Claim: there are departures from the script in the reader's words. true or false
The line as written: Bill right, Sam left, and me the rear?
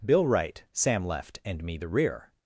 false